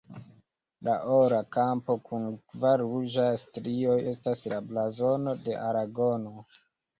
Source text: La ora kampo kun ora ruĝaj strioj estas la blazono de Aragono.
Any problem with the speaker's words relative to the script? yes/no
yes